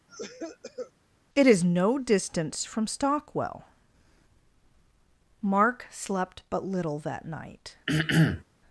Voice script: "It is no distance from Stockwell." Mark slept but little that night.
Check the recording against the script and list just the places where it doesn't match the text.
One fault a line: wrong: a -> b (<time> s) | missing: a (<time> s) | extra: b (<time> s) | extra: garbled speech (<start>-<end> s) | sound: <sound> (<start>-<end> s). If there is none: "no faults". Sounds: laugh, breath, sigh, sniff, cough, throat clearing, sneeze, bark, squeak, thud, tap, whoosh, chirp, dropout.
sound: cough (0.1-0.9 s)
sound: throat clearing (7.9-8.4 s)